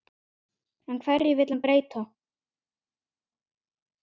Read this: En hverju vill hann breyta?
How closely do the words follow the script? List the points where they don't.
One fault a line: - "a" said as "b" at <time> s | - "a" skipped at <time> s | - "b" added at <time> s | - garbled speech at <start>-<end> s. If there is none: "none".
none